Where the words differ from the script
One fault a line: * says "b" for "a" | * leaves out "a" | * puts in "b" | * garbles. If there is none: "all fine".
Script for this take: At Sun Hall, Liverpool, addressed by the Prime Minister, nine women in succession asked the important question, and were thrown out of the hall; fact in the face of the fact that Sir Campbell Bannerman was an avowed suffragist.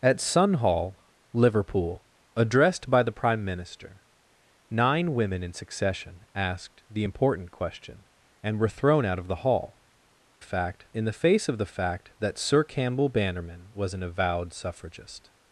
all fine